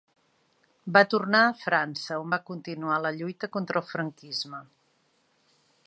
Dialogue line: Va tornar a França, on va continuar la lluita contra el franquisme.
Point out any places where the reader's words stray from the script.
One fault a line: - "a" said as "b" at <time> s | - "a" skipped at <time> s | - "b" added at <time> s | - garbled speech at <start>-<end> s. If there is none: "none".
none